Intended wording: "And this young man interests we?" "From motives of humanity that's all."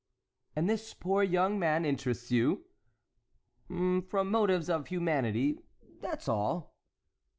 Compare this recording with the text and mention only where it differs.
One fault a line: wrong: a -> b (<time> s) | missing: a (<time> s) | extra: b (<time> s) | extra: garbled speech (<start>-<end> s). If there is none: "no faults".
extra: poor (0.9 s)
wrong: we -> you (2.3 s)